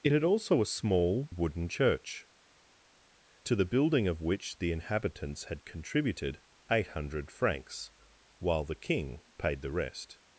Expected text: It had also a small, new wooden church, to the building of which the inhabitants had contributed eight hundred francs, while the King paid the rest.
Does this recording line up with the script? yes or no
no